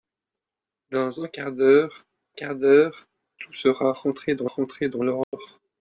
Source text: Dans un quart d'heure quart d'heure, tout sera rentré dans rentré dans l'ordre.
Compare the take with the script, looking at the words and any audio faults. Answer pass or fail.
fail